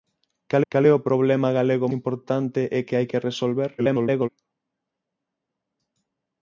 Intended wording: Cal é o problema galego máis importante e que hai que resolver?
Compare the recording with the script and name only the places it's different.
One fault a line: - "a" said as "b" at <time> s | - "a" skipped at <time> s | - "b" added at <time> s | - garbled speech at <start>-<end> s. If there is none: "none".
- "cal" added at 0.7 s
- "máis" skipped at 1.9 s
- garbled speech at 3.8-4.3 s